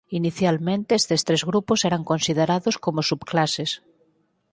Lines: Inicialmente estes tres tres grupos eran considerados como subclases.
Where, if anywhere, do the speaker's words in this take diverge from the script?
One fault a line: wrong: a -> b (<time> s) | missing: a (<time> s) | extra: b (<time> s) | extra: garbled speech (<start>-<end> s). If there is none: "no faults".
missing: tres (1.4 s)